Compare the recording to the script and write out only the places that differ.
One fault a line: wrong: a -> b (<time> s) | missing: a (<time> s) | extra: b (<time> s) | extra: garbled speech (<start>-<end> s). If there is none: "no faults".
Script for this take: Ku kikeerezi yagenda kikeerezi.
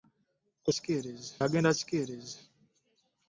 no faults